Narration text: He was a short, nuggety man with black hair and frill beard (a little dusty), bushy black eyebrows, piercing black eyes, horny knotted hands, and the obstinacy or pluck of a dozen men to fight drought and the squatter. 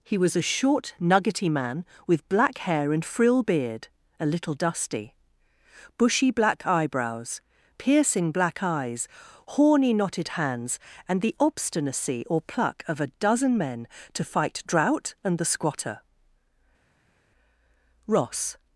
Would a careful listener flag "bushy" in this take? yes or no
no